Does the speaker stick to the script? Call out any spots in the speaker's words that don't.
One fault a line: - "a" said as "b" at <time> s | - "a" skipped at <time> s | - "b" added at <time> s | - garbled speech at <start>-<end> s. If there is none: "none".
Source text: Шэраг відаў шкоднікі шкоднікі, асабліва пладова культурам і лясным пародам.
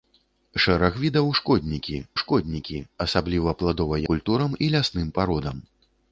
none